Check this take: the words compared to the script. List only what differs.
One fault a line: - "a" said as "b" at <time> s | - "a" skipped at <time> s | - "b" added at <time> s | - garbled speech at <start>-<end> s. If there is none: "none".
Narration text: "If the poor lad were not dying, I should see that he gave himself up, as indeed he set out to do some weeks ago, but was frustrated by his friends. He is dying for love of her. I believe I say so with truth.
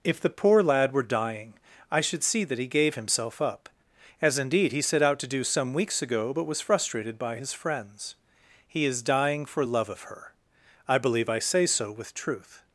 - "not" skipped at 1.0 s